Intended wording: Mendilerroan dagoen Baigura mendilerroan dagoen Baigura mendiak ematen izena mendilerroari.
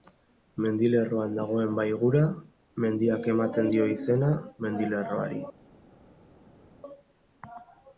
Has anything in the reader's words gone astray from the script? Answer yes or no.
yes